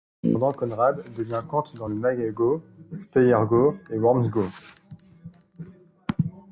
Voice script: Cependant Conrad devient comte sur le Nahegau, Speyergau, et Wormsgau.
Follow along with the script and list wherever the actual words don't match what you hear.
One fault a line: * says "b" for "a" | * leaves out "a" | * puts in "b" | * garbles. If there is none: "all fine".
* says "dans" for "sur"